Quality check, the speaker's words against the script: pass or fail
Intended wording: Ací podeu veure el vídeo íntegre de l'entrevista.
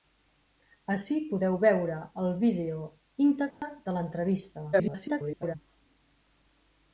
fail